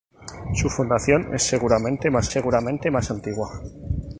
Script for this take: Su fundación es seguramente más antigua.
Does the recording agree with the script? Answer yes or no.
no